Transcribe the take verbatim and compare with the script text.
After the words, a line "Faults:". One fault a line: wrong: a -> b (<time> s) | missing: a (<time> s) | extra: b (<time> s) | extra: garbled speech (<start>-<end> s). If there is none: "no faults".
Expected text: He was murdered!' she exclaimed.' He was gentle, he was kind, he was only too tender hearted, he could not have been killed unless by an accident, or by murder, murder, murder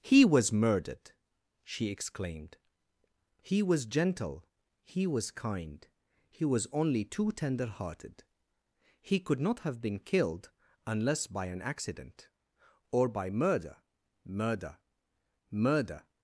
He was murdered!' she exclaimed.' He was gentle, he was kind, he was only too tender hearted, he could not have been killed unless by an accident, or by murder, murder, murder
Faults:
no faults